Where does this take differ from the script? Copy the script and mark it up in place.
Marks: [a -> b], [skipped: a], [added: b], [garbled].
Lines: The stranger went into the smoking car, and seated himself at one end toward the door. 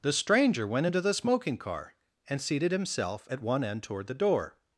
The stranger went into the smoking car, and seated himself at one end toward the door.